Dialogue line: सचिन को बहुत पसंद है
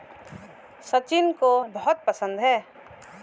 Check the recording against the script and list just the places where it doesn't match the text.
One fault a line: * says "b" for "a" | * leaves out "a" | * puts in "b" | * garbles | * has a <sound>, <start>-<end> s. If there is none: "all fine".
all fine